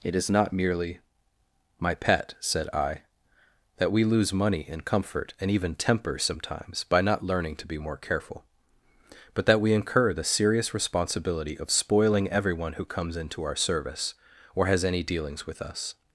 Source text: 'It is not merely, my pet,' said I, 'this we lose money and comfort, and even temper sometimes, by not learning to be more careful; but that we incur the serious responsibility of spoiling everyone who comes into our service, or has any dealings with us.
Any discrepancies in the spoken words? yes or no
yes